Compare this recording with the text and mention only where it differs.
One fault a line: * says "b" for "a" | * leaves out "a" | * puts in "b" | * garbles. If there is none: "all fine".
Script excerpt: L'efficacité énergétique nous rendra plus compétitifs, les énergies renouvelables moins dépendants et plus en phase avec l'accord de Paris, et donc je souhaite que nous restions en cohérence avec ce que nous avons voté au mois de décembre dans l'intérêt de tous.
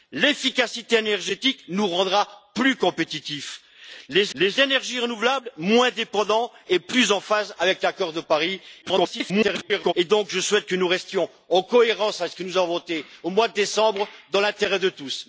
* puts in "les"
* garbles